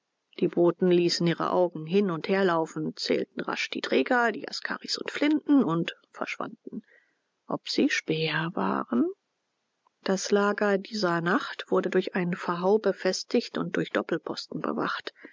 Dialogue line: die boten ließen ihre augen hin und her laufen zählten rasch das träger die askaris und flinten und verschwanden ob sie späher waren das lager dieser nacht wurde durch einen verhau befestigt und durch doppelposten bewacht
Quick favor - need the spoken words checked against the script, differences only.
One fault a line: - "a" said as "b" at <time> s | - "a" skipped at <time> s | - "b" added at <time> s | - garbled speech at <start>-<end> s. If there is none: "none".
- "das" said as "die" at 3.7 s